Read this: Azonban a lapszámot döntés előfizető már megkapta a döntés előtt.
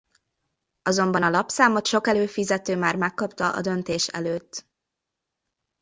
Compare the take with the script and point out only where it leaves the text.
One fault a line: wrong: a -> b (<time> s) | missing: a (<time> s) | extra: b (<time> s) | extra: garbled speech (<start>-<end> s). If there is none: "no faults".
wrong: döntés -> sok (1.9 s)